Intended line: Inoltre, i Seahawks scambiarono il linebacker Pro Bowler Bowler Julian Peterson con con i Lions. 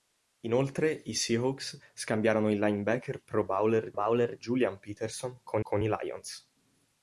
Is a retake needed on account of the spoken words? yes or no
no